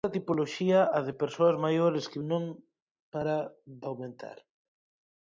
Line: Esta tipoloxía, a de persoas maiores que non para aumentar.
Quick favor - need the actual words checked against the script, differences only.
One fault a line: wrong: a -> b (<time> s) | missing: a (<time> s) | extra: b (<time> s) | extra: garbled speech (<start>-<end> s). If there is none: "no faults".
no faults